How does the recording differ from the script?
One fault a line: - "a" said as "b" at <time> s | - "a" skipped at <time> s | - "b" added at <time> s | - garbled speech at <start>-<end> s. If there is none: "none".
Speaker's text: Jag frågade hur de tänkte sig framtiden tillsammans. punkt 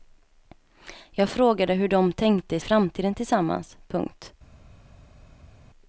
- "sig" skipped at 2.6 s